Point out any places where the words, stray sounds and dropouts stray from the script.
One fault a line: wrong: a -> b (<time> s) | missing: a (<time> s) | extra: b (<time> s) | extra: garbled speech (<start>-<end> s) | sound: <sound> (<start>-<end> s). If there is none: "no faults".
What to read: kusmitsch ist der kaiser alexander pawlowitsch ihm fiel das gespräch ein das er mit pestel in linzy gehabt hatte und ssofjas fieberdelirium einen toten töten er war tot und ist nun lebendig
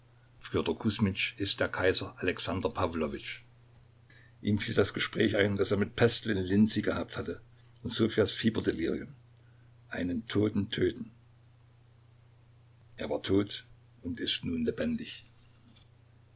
no faults